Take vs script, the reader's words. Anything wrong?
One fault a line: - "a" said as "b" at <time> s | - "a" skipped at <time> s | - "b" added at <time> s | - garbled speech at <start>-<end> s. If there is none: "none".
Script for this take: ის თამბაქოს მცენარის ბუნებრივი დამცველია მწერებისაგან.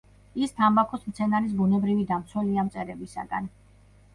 none